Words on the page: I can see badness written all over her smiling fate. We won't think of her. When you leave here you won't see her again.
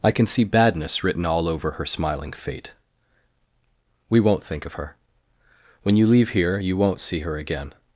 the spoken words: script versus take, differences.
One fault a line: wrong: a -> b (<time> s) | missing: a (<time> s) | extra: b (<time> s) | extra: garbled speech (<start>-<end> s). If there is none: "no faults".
no faults